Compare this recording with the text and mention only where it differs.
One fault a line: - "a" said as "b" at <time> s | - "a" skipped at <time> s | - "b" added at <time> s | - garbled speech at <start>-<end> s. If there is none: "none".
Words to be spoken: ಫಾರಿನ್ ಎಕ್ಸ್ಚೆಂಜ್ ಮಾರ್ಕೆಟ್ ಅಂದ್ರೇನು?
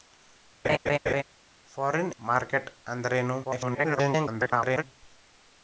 - "ಎಕ್ಸ್ಚೆಂಜ್" skipped at 2.1 s
- garbled speech at 3.4-4.8 s